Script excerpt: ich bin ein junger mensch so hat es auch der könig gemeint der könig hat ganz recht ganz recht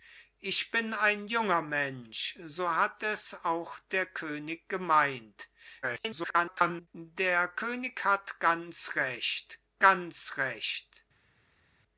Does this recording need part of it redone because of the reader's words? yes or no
yes